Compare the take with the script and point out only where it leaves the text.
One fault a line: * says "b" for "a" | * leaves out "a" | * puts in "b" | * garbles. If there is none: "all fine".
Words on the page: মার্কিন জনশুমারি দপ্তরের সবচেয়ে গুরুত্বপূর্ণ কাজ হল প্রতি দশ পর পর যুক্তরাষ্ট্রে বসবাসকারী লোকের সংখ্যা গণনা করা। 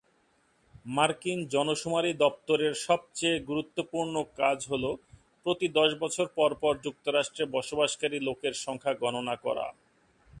* puts in "বছর"